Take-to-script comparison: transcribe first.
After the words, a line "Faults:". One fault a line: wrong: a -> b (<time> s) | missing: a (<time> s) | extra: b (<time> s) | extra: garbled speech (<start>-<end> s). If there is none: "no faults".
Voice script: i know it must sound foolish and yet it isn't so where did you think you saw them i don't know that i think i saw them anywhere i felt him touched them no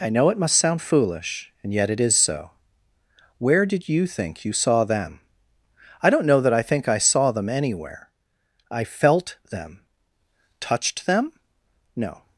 i know it must sound foolish and yet it is so where did you think you saw them i don't know that i think i saw them anywhere i felt them touched them no
Faults:
wrong: isn't -> is (2.0 s)
wrong: him -> them (9.5 s)